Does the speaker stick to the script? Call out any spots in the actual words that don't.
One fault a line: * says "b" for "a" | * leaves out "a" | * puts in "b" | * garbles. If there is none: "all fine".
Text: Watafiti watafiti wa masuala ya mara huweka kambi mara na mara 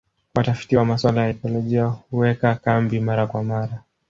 * leaves out "watafiti"
* says "ekolojia" for "mara"
* says "kwa" for "na"